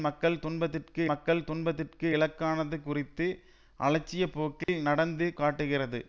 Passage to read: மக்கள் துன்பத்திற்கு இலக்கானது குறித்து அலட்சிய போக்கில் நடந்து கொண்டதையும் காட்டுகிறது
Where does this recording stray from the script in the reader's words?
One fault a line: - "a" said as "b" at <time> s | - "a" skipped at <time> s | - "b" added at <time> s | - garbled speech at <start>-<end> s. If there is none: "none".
- "மக்கள் துன்பத்திற்கு" added at 1.1 s
- "கொண்டதையும்" skipped at 5.3 s